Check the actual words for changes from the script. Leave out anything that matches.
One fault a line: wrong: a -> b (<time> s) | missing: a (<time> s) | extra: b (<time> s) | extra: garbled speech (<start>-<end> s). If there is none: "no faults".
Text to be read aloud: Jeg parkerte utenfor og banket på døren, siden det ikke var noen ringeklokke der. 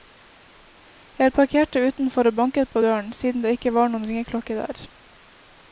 no faults